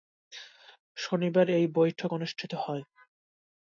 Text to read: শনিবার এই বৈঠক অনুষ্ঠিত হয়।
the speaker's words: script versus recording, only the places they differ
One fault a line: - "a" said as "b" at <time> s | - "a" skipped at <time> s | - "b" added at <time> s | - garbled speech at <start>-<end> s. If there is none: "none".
none